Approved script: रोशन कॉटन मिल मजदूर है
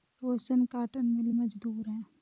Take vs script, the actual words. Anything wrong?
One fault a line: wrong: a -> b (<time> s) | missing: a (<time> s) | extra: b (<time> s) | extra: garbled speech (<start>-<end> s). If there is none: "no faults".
no faults